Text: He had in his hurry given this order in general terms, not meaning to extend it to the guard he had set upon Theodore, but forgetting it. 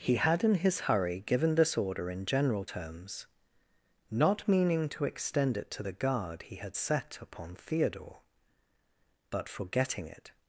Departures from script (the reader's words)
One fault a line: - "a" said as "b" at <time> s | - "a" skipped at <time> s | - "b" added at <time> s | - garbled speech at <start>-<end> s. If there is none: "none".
none